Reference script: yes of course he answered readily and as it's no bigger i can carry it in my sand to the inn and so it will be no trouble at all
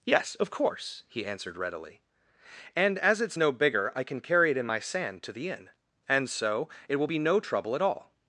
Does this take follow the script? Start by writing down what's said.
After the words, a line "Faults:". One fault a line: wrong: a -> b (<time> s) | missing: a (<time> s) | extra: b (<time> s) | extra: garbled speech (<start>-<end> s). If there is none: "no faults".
yes of course he answered readily and as it's no bigger i can carry it in my sand to the inn and so it will be no trouble at all
Faults:
no faults